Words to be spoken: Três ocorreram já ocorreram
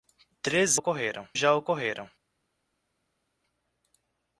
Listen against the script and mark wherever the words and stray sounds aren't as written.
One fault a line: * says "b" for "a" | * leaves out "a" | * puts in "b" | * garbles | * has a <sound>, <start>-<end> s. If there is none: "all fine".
all fine